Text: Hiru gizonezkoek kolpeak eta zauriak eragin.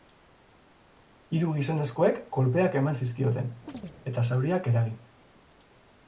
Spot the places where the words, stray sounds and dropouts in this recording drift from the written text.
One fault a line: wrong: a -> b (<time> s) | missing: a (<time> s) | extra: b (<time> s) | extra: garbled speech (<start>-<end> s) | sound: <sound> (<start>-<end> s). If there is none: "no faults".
extra: eman zizkioten (2.8 s)
sound: chirp (3.7-4.0 s)